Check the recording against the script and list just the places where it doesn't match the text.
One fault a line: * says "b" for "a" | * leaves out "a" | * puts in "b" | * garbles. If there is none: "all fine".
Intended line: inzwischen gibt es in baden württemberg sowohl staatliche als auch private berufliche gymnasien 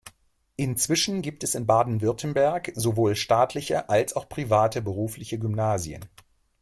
all fine